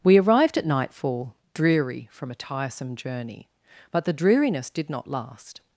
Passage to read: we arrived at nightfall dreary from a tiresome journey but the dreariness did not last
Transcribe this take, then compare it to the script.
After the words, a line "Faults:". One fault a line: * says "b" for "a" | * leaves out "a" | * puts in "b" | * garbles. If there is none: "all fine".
we arrived at nightfall dreary from a tiresome journey but the dreariness did not last
Faults:
all fine